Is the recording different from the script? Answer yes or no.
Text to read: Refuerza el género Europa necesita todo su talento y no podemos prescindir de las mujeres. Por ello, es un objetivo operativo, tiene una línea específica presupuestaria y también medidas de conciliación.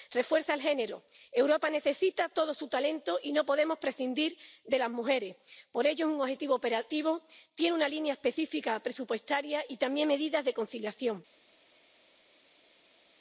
no